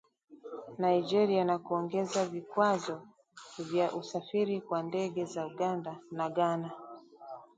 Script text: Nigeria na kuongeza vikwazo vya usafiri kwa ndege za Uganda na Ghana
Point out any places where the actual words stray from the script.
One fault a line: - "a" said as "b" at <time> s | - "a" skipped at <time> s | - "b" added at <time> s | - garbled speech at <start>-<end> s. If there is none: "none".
none